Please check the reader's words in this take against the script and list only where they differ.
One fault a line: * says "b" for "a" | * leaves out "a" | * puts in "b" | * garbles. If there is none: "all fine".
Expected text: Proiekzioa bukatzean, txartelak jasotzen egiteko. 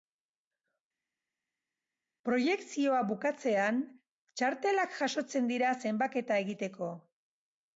* puts in "dira zenbaketa"